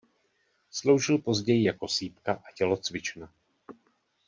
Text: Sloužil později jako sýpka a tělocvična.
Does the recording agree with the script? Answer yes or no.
yes